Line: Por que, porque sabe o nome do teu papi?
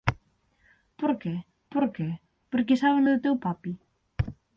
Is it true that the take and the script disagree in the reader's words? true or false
true